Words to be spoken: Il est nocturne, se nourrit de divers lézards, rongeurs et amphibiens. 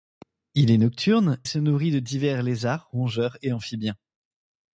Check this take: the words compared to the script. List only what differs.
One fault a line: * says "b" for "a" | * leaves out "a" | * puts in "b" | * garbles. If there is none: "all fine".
all fine